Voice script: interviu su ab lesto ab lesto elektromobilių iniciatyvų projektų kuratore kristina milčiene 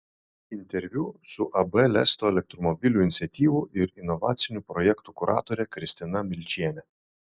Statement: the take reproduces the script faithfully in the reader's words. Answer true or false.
false